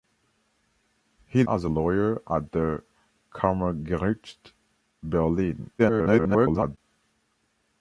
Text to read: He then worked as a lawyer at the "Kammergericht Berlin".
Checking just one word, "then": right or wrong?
wrong